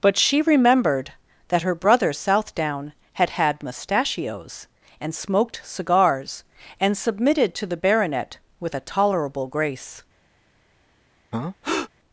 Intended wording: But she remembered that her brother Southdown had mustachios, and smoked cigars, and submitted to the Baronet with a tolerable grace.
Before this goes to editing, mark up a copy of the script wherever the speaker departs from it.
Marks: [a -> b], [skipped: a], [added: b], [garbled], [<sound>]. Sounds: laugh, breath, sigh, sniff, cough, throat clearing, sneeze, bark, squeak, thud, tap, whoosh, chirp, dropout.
But she remembered that her brother Southdown had [added: had] mustachios, and smoked cigars, and submitted to the Baronet with a tolerable grace. [breath]